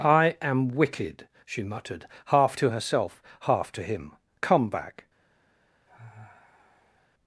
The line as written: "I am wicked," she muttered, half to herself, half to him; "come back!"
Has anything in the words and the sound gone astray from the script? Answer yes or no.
yes